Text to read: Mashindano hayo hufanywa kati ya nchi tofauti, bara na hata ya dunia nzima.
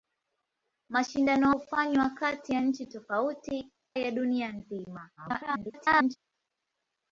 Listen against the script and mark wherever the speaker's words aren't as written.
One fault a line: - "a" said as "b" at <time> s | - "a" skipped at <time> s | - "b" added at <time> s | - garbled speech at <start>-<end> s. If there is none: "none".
- "hayo" skipped at 1.5 s
- "bara na hata" skipped at 3.7 s
- garbled speech at 5.2-6.2 s